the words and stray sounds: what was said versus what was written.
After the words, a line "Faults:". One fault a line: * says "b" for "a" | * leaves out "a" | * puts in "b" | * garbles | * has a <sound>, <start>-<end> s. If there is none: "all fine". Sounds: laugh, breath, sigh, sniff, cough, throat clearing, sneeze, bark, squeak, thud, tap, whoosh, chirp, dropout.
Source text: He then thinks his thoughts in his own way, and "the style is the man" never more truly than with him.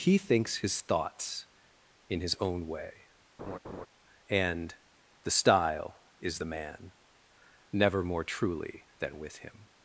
He thinks his thoughts in his own way, and "the style is the man" never more truly than with him.
Faults:
* leaves out "then"
* has a laugh, 3.4-3.9 s